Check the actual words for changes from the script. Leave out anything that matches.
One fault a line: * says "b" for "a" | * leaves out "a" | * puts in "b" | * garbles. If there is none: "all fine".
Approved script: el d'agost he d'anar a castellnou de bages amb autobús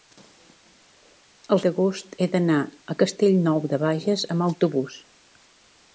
all fine